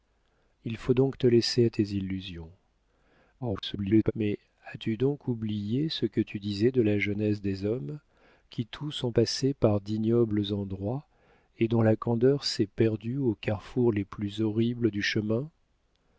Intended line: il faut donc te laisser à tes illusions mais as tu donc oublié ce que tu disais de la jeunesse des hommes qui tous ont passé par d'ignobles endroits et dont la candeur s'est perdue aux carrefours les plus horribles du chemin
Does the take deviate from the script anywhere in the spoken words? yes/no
yes